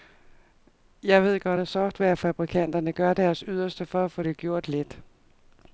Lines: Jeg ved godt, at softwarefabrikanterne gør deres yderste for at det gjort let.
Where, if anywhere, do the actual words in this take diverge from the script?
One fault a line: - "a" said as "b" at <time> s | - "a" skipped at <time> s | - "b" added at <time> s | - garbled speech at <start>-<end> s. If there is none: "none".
- "få" added at 4.1 s